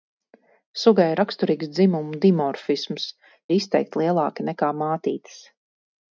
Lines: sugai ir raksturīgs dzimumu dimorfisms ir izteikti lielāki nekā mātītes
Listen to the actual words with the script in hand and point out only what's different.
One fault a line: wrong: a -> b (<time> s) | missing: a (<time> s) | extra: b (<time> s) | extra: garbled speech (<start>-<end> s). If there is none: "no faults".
no faults